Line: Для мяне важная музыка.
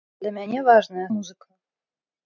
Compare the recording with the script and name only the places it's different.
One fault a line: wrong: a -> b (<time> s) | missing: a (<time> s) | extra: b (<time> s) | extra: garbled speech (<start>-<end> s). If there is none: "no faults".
no faults